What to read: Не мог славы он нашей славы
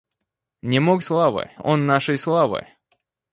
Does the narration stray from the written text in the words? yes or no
no